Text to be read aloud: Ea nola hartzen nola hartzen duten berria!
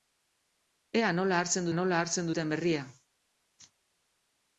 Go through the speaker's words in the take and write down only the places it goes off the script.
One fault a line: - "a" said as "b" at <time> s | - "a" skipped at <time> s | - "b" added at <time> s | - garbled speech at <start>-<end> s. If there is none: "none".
none